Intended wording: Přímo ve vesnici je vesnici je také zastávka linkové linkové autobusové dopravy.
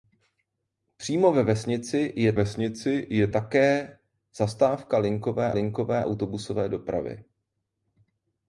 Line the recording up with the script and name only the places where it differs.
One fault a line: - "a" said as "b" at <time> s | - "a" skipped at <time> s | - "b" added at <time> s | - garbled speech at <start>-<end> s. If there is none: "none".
none